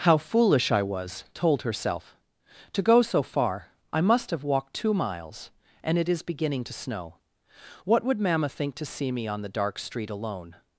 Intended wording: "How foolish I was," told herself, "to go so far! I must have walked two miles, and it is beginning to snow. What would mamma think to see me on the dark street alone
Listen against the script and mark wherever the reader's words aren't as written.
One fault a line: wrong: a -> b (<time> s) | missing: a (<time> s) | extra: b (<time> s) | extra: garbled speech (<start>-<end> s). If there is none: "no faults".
no faults